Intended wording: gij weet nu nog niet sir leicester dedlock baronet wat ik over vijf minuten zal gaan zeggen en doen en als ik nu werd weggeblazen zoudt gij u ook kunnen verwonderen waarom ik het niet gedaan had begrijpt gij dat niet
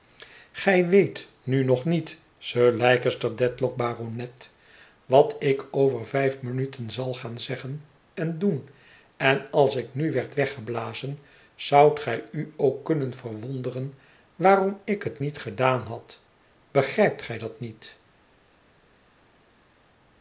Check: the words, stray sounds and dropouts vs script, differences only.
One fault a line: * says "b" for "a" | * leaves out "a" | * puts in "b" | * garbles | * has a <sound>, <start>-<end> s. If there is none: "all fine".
all fine